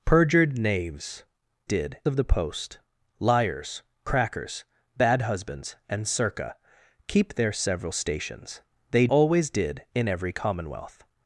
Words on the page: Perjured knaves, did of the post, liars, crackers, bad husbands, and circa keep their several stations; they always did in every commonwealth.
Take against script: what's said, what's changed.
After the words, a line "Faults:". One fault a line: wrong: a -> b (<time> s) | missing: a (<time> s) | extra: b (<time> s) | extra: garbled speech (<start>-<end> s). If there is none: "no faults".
Perjured knaves, did of the post, liars, crackers, bad husbands, and circa keep their several stations; they always did in every commonwealth.
Faults:
no faults